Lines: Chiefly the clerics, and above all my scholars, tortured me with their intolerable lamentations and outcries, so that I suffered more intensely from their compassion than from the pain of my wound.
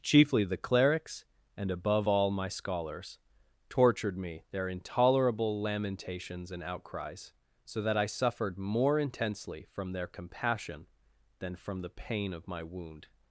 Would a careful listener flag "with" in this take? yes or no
yes